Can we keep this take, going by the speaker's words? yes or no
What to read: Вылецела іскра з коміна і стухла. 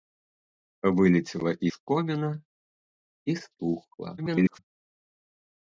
no